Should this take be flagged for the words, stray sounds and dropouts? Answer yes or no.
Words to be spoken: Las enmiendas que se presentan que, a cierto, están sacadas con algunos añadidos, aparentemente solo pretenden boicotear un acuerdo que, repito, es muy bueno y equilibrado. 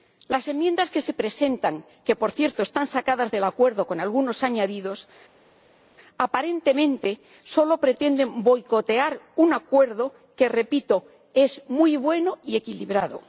yes